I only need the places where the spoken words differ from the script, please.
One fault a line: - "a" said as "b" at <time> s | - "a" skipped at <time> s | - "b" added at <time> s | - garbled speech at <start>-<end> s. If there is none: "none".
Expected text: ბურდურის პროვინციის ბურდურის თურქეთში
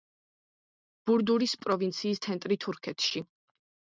- "ბურდურის" said as "ცენტრი" at 2.2 s